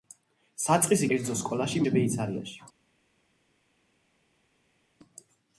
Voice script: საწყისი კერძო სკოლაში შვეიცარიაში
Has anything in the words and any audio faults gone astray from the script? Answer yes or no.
no